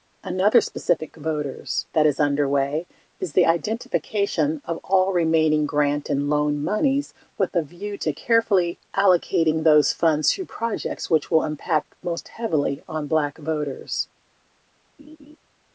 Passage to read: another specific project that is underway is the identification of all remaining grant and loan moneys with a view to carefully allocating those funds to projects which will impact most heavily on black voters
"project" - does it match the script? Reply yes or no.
no